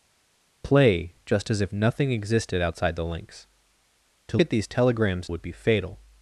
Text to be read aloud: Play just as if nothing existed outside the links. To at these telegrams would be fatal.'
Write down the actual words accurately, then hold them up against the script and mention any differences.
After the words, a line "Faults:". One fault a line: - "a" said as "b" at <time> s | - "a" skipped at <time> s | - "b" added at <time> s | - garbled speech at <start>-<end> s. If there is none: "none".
Play just as if nothing existed outside the links. To at these telegrams would be fatal.'
Faults:
none